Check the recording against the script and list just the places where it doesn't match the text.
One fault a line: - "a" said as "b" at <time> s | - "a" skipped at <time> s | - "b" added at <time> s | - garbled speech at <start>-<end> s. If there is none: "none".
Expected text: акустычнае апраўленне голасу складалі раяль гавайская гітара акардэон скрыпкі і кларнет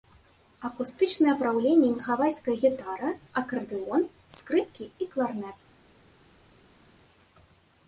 - "голасу складалі раяль" skipped at 1.9 s